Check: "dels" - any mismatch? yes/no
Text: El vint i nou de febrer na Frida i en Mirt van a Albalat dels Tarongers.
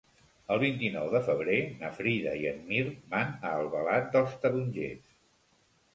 no